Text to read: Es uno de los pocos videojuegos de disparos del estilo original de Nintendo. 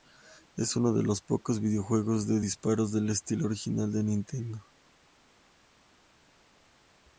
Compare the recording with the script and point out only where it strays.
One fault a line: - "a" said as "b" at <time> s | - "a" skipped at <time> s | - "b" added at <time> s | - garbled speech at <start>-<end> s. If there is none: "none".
none